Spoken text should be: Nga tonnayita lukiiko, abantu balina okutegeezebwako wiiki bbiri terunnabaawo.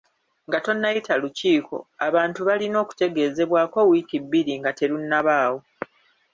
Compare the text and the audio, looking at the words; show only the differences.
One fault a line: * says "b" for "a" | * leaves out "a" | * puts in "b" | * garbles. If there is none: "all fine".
* puts in "nga"